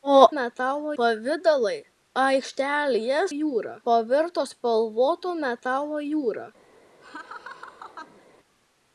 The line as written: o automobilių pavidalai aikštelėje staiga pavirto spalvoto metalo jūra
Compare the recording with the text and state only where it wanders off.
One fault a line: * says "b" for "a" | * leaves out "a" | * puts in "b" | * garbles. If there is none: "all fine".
* says "metalo" for "automobilių"
* says "jūra" for "staiga"